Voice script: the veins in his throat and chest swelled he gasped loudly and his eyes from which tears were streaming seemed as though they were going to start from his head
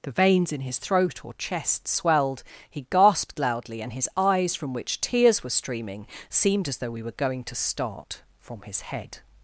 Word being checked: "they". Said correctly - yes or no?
no